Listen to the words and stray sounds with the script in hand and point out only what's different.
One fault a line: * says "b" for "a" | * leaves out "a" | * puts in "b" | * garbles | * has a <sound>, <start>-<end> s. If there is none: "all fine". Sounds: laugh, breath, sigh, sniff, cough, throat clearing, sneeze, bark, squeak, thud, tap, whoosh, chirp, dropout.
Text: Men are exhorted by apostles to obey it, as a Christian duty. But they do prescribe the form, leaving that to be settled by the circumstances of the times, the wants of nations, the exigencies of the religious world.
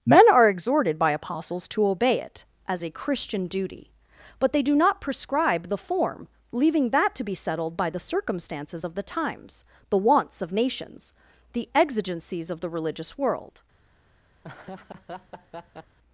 * puts in "not"
* has a laugh, 14.4-16.0 s